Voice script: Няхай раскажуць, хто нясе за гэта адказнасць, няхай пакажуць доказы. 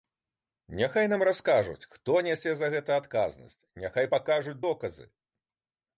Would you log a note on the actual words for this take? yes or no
yes